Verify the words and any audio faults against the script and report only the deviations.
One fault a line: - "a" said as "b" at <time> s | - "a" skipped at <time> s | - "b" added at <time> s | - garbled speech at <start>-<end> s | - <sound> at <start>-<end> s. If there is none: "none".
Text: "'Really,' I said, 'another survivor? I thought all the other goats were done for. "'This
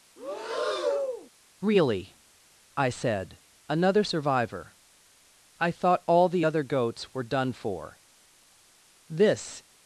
- breath at 0.2-1.3 s